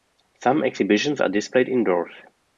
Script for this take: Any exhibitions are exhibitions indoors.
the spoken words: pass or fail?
fail